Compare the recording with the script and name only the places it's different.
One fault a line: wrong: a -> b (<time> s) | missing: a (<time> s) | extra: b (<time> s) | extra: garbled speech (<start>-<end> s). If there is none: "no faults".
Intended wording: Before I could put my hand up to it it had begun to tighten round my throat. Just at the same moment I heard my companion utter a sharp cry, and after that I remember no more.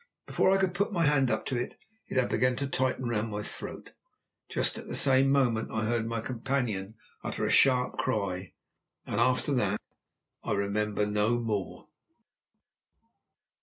no faults